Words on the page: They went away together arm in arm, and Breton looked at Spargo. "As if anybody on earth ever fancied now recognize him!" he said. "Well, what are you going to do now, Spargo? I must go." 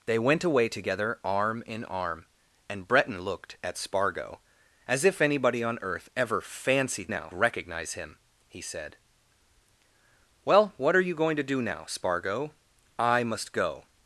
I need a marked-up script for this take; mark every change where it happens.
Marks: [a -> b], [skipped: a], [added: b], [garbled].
They went away together arm in arm, and Breton looked at Spargo. "As if anybody on earth ever fancied now recognize him!" he said. "Well, what are you going to do now, Spargo? I must go."